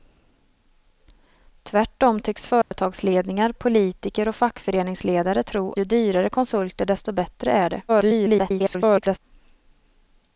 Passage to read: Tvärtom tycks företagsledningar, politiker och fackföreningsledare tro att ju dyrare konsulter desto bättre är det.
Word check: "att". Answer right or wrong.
wrong